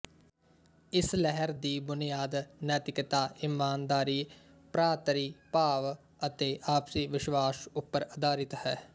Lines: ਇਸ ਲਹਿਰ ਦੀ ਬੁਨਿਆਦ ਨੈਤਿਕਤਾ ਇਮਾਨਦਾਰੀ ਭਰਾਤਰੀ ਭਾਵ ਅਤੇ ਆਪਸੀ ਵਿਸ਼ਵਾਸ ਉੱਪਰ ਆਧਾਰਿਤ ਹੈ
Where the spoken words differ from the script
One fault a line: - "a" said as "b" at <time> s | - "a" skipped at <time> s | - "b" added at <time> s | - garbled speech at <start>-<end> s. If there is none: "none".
none